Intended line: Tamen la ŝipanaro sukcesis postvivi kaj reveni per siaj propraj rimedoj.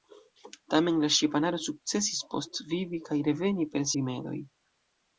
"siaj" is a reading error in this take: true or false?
true